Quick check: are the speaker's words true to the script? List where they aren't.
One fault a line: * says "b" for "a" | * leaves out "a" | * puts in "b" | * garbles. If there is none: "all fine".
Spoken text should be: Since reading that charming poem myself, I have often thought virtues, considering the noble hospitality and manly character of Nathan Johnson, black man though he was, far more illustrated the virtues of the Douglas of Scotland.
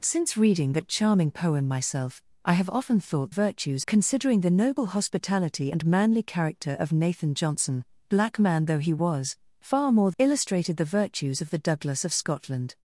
all fine